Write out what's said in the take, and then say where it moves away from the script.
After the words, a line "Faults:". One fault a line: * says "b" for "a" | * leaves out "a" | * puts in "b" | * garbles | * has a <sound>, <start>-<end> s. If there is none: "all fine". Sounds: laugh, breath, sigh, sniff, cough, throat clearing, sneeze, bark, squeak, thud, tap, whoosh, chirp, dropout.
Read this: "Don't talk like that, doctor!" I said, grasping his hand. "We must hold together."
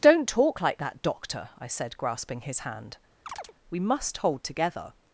"Don't talk like that, doctor!" I said, grasping his hand. "We must hold together."
Faults:
* has a chirp, 3.3-3.5 s